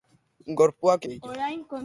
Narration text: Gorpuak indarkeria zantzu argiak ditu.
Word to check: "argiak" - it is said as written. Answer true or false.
false